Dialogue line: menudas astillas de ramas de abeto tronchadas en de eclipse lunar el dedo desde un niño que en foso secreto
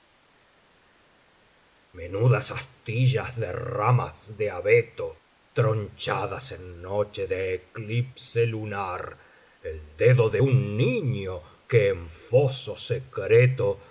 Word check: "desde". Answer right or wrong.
wrong